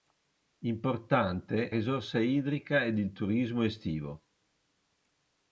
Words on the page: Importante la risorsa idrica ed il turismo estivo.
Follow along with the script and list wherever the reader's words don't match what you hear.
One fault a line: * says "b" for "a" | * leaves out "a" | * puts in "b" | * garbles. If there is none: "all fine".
* leaves out "la"